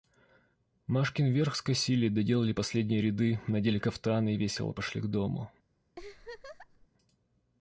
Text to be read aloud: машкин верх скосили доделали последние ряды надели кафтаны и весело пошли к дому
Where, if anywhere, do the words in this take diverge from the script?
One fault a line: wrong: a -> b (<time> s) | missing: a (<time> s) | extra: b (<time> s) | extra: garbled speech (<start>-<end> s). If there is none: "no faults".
no faults